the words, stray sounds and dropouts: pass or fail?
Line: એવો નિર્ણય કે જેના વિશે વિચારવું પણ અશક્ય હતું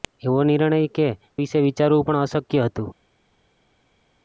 fail